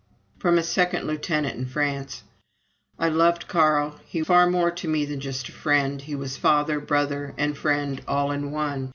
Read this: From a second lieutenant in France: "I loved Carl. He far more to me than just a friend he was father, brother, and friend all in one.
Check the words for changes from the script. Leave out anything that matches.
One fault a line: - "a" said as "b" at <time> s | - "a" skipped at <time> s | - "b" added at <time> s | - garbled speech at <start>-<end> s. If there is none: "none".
none